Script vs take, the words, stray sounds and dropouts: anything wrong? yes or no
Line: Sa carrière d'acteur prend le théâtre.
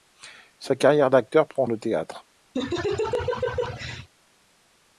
yes